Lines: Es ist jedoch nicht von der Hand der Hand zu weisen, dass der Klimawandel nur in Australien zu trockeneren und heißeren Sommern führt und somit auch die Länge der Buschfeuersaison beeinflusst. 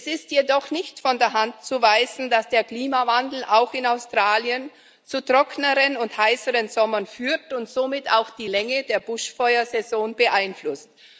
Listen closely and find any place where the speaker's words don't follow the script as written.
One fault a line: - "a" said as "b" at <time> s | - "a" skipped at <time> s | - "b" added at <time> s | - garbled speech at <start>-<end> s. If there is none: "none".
- "der Hand" skipped at 1.5 s
- "nur" said as "auch" at 3.4 s